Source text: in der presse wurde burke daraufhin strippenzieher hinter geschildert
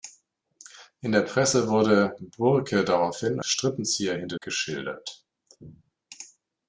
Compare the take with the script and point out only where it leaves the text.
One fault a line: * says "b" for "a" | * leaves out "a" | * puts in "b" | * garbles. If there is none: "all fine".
all fine